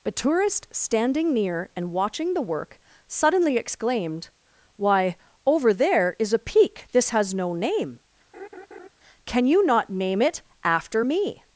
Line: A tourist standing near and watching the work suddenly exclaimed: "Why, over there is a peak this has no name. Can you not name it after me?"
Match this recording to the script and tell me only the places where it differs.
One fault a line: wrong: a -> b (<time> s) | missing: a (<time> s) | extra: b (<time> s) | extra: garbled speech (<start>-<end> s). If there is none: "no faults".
no faults